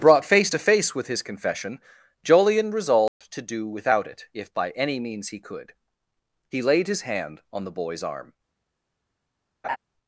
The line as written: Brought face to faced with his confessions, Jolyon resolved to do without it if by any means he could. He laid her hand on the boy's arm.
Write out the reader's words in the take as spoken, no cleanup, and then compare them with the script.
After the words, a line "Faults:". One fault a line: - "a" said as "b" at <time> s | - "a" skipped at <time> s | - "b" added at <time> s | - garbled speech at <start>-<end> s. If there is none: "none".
Brought face to face with his confession, Jolyon resolved to do without it if by any means he could. He laid his hand on the boy's arm.
Faults:
- "faced" said as "face" at 0.6 s
- "confessions" said as "confession" at 1.2 s
- "her" said as "his" at 6.9 s